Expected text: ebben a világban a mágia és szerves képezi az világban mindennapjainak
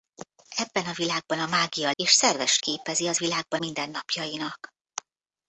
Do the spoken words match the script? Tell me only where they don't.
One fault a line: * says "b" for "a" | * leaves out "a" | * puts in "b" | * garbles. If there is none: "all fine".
all fine